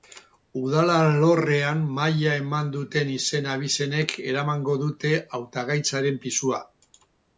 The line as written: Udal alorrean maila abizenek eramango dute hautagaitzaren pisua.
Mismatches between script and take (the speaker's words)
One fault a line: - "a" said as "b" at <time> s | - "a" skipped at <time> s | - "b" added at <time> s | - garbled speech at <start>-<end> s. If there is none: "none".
- "eman duten izen" added at 2.5 s